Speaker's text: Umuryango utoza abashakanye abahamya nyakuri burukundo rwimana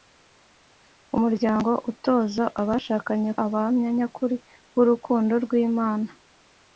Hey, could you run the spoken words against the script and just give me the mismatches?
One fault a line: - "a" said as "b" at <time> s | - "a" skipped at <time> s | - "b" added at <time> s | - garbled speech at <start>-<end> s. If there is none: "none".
none